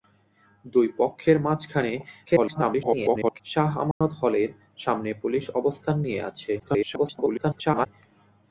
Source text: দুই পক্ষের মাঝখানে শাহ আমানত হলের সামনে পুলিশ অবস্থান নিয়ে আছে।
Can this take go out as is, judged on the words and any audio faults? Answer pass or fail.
fail